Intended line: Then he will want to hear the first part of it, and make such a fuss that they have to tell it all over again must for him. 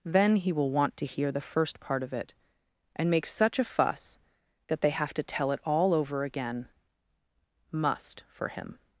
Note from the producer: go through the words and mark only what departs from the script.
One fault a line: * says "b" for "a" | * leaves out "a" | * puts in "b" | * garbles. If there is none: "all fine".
all fine